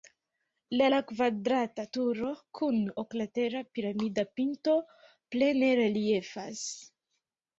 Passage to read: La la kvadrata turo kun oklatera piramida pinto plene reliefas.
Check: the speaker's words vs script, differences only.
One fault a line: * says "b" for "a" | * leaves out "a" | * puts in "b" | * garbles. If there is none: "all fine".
all fine